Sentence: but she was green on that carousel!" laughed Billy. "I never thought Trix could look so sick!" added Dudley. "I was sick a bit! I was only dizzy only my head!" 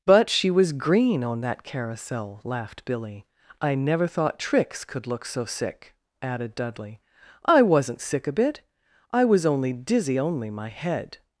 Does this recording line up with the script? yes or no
no